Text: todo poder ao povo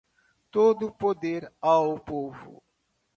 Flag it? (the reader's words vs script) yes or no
no